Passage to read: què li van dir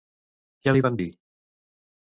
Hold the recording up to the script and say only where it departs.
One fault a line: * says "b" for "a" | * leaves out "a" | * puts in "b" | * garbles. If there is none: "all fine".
all fine